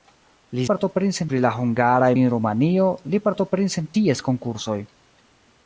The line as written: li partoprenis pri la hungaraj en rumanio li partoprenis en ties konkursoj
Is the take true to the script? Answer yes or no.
yes